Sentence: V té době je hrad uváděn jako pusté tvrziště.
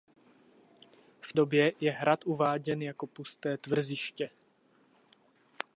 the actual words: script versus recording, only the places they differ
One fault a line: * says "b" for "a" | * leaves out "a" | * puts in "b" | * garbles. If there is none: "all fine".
* leaves out "té"